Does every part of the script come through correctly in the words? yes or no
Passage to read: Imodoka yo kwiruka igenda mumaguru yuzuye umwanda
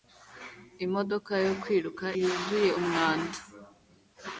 no